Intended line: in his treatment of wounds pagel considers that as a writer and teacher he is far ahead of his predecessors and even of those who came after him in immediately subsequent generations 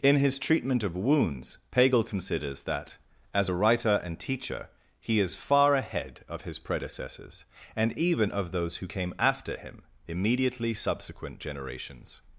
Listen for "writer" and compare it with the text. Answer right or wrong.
right